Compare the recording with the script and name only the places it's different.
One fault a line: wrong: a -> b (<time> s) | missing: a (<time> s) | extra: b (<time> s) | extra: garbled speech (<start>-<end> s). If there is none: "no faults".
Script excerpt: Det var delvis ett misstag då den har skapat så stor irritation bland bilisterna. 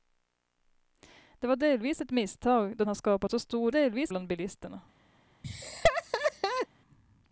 missing: den (2.9 s)
wrong: irritation -> delvis (3.7 s)